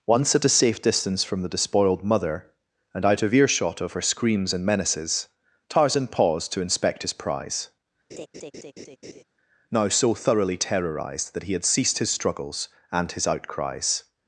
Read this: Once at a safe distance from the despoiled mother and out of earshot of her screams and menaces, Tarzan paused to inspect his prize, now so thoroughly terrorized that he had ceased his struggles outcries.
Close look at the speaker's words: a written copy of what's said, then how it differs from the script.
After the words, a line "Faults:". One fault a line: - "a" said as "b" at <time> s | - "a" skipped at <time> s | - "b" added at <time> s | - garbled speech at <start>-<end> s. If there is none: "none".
Once at a safe distance from the despoiled mother and out of earshot of her screams and menaces, Tarzan paused to inspect his prize, now so thoroughly terrorized that he had ceased his struggles and his outcries.
Faults:
- "and his" added at 12.9 s